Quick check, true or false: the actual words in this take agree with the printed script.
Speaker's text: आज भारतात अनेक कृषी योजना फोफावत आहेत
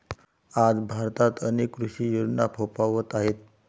true